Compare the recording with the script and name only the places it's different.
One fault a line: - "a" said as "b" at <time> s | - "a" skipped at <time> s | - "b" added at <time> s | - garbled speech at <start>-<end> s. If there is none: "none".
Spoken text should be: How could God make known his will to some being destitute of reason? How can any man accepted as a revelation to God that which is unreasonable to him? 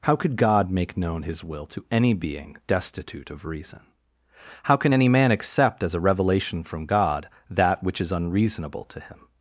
- "some" said as "any" at 1.9 s
- "accepted" said as "accept" at 5.3 s
- "to" said as "from" at 6.6 s